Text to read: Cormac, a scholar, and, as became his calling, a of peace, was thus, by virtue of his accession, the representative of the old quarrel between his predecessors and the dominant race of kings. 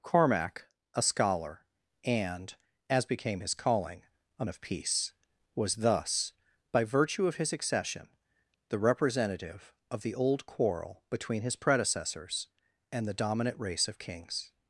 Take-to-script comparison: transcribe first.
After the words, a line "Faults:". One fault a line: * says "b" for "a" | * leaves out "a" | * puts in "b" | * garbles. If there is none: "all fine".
Cormac, a scholar, and, as became his calling, a of peace, was thus, by virtue of his accession, the representative of the old quarrel between his predecessors and the dominant race of kings.
Faults:
all fine